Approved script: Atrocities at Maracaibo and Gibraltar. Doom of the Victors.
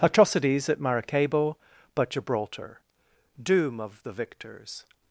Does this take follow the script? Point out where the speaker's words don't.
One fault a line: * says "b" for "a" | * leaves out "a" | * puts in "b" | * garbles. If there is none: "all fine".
* says "but" for "and"